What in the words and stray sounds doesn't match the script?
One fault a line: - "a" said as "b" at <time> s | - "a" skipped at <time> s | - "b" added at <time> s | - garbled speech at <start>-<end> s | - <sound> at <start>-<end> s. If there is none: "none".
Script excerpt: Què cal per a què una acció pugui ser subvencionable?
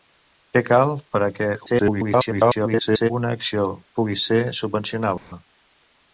- garbled speech at 1.7-3.1 s
- dropout at 5.2-5.3 s